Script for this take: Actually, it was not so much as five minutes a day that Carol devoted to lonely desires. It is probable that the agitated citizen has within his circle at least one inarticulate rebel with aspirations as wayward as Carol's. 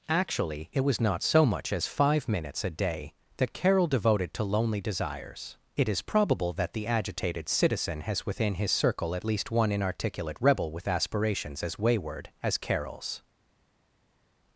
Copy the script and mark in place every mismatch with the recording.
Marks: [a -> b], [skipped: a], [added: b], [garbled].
Actually, it was not so much as five minutes a day that Carol devoted to lonely desires. It is probable that the agitated citizen has within his circle at least one inarticulate rebel with aspirations as wayward as Carol's.